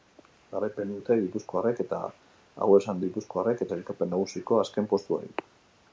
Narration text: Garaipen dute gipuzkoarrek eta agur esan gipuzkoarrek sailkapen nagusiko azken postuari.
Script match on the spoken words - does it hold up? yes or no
yes